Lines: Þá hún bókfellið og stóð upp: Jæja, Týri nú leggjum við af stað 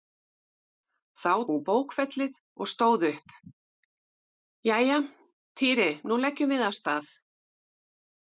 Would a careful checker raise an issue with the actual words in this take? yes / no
no